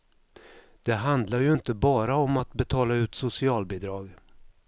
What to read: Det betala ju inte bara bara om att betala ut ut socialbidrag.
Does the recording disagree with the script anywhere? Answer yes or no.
yes